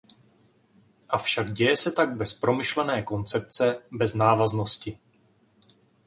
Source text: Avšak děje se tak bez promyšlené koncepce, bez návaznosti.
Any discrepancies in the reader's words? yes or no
no